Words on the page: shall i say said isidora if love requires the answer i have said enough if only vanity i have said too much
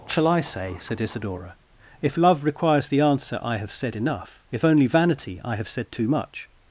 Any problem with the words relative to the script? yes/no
no